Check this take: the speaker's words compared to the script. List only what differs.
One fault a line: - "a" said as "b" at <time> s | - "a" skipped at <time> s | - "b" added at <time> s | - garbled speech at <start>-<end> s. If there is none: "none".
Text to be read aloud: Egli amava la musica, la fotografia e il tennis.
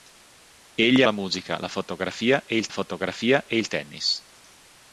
- "amava" skipped at 1.0 s
- "fotografia e il" added at 2.7 s